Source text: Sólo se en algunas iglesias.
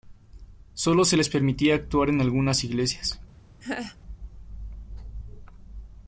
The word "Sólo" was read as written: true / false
true